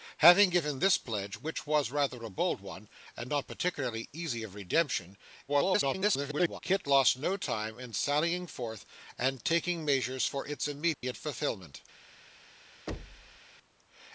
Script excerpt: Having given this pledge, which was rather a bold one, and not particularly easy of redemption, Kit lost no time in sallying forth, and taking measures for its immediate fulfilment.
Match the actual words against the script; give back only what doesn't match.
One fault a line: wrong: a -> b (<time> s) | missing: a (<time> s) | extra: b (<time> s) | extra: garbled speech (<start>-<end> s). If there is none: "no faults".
extra: garbled speech (5.5-6.6 s)